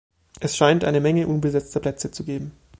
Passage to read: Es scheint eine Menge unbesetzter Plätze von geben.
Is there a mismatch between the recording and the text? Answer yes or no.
yes